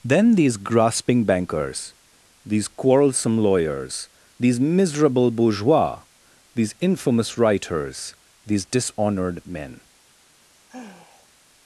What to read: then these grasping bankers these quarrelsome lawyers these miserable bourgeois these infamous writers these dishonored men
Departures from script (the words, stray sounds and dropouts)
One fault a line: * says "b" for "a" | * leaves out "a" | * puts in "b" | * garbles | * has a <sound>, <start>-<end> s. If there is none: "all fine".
* has a sigh, 10.4-11.3 s